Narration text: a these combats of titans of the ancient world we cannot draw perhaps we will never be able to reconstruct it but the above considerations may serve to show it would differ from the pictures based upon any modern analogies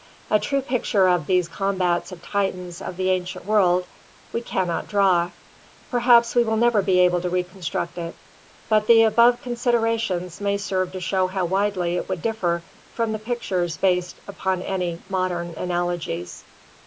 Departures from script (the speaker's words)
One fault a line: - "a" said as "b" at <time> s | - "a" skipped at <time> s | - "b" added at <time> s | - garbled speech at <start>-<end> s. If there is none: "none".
- "true picture of" added at 0.4 s
- "how widely" added at 11.3 s